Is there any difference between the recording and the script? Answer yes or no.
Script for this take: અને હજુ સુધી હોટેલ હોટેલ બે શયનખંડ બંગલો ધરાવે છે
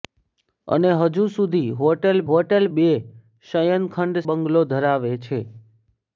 no